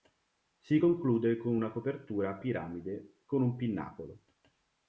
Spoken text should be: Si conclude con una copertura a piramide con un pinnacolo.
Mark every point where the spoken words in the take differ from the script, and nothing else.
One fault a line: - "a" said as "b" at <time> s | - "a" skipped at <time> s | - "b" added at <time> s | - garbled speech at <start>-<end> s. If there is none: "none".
none